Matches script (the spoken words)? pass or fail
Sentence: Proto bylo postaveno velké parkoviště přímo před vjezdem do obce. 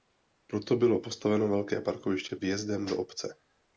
fail